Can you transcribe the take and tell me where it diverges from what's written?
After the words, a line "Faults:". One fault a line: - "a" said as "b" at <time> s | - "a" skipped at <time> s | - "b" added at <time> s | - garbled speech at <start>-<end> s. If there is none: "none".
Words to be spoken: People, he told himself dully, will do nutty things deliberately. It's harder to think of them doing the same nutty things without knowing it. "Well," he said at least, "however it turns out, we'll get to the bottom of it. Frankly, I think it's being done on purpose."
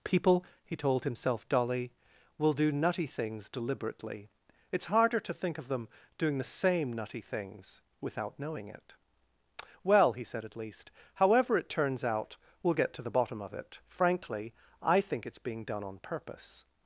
People, he told himself dully, will do nutty things deliberately. It's harder to think of them doing the same nutty things without knowing it. "Well," he said at least, "however it turns out, we'll get to the bottom of it. Frankly, I think it's being done on purpose."
Faults:
none